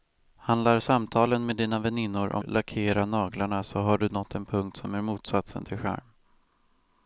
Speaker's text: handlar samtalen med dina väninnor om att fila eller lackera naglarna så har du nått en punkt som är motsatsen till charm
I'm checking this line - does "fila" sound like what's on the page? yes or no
no